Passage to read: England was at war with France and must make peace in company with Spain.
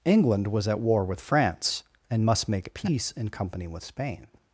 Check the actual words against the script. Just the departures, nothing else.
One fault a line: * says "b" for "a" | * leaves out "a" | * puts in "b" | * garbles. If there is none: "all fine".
all fine